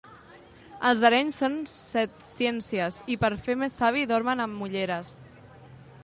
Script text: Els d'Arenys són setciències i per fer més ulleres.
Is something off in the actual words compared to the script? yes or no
yes